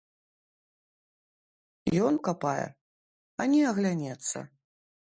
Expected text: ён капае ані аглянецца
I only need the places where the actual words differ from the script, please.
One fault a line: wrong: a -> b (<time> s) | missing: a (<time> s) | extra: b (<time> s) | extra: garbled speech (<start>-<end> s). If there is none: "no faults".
no faults